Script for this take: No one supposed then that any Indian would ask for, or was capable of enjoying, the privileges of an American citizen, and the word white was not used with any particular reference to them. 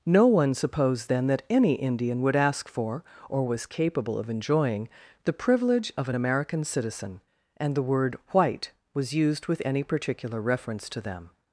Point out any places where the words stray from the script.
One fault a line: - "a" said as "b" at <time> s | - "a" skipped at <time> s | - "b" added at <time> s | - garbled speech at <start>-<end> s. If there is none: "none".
- "privileges" said as "privilege" at 5.3 s
- "not" skipped at 9.1 s